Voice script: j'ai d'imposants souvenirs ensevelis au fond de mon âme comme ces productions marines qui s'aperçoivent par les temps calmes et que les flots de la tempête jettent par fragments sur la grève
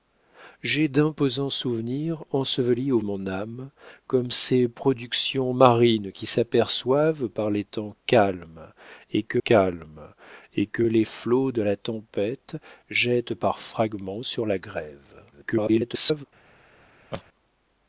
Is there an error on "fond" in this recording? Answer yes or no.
yes